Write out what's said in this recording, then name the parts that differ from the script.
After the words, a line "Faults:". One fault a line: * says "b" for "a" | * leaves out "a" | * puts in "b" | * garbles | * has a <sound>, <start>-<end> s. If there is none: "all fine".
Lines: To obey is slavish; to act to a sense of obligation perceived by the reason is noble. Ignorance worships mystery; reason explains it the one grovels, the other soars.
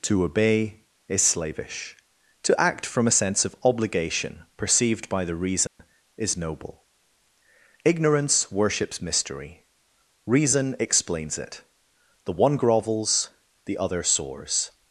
To obey is slavish; to act from a sense of obligation perceived by the reason is noble. Ignorance worships mystery; reason explains it the one grovels, the other soars.
Faults:
* says "from" for "to"
* has a dropout, 5.7-5.8 s